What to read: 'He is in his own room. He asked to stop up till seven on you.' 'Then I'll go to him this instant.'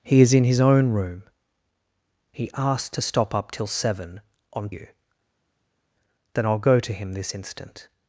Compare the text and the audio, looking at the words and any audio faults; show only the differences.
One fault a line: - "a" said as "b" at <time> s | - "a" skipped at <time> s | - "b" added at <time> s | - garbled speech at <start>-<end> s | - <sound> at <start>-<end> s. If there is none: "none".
none